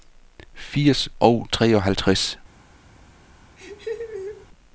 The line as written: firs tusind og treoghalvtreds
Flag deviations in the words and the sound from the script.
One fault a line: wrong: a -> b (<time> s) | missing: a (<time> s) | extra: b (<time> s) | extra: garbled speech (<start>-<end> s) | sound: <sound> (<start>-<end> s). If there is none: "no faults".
missing: tusind (1.1 s)
sound: laugh (3.6-4.5 s)